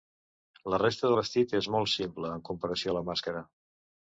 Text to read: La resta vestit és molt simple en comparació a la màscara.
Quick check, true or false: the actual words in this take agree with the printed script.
true